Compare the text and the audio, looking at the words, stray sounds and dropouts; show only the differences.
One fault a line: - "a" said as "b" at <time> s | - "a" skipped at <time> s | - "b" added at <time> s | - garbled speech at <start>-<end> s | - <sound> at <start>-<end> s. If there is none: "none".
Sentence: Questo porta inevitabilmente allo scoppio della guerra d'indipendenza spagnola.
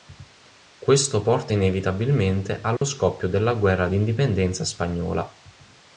- dropout at 2.8-2.8 s